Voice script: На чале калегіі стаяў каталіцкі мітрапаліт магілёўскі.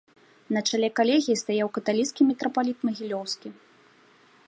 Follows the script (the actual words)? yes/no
yes